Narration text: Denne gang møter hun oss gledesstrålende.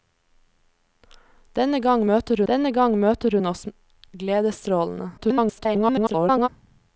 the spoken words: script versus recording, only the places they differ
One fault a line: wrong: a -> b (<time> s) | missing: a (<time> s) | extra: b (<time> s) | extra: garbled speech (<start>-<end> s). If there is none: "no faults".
extra: denne gang møter (2.5 s)
extra: garbled speech (5.2-6.5 s)